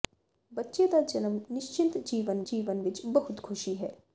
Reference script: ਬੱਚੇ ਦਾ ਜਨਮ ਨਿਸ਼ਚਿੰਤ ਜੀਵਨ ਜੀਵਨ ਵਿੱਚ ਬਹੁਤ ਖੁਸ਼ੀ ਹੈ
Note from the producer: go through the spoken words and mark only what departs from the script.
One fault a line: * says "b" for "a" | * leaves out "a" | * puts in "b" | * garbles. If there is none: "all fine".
all fine